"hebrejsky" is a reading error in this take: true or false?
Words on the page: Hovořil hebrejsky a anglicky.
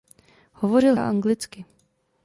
true